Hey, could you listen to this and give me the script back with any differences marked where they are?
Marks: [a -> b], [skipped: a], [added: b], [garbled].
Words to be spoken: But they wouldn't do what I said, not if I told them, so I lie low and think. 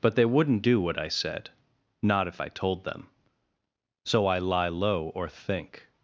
But they wouldn't do what I said, not if I told them, so I lie low [and -> or] think.